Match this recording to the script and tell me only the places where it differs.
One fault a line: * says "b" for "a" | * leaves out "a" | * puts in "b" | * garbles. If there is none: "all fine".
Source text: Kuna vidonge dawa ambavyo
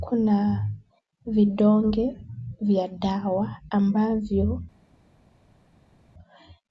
* puts in "vya"